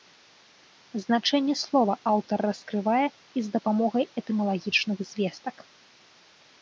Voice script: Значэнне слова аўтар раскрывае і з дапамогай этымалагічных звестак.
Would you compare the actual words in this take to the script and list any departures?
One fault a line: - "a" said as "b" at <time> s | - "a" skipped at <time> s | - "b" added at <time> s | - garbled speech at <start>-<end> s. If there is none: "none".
none